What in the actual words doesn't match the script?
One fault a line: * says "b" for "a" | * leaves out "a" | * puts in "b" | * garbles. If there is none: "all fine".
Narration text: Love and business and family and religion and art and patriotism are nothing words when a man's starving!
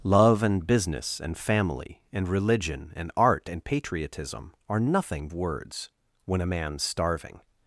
all fine